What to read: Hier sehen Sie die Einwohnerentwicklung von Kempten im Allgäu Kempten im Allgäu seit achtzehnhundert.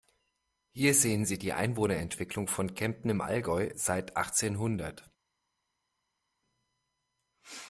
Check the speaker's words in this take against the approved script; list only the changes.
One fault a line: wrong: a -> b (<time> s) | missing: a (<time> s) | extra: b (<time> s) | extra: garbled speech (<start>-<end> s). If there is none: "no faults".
missing: Kempten im Allgäu (3.7 s)